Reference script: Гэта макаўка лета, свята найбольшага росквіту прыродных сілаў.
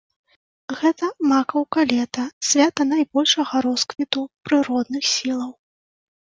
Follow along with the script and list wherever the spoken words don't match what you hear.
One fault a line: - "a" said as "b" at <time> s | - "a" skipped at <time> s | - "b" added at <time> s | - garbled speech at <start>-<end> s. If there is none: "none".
none